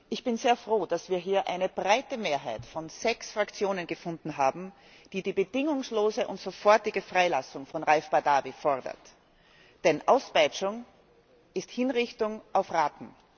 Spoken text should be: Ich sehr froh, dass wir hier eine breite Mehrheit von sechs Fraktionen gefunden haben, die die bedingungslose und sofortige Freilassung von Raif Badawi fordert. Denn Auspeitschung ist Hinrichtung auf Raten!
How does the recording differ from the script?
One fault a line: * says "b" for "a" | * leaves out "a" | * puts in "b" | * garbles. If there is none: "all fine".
* puts in "bin"